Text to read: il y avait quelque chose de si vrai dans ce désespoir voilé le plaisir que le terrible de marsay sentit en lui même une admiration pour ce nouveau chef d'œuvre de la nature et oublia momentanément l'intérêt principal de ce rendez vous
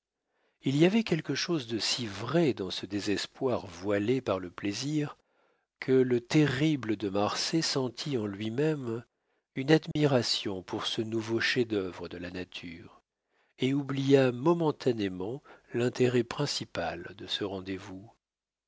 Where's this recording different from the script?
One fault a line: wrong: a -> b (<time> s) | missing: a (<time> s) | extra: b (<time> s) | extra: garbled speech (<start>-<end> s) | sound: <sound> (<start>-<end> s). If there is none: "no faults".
extra: par (4.2 s)
sound: dropout (9.9-10.0 s)